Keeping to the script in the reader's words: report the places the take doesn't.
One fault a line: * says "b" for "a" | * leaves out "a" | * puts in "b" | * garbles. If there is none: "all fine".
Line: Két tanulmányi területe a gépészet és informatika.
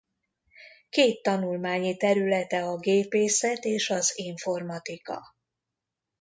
* puts in "az"